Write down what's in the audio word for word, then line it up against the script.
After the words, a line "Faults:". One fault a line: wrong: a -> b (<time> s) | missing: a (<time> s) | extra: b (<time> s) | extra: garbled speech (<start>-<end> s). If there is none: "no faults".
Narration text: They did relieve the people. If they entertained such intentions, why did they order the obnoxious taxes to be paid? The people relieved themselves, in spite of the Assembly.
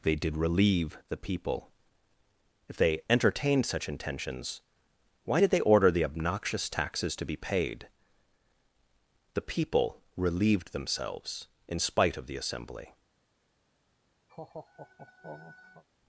They did relieve the people. If they entertained such intentions, why did they order the obnoxious taxes to be paid? The people relieved themselves, in spite of the Assembly.
Faults:
no faults